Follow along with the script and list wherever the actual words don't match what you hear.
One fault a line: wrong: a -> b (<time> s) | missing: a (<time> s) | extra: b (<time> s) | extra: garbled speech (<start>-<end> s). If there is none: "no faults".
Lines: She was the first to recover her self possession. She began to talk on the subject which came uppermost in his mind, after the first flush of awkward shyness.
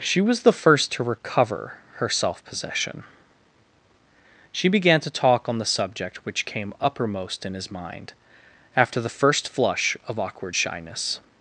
no faults